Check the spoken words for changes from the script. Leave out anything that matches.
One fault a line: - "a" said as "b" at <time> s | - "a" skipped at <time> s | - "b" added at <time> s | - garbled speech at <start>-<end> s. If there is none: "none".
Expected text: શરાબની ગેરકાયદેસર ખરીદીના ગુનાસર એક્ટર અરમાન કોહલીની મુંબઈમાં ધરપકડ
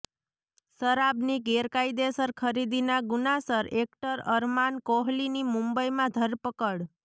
none